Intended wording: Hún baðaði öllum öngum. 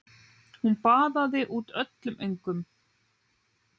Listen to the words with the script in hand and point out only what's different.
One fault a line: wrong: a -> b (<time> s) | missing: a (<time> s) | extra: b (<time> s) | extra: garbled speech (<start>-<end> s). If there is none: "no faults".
extra: út (1.6 s)